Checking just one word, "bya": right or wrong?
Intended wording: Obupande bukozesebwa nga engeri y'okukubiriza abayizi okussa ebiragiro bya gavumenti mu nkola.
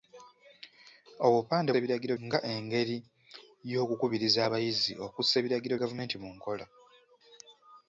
wrong